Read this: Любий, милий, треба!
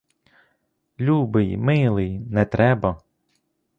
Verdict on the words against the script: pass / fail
fail